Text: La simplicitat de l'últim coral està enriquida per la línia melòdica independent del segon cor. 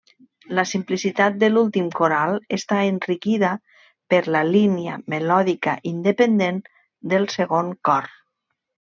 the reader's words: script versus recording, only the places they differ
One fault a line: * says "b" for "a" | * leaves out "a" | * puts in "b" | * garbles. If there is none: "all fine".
all fine